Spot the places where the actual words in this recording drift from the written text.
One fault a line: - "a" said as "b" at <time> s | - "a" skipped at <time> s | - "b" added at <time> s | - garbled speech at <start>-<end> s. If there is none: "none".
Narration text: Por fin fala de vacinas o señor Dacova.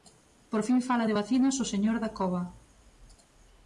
none